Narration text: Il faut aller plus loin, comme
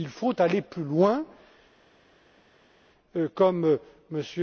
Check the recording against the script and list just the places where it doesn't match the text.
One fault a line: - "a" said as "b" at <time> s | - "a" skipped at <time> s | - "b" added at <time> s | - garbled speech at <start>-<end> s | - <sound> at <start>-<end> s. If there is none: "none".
none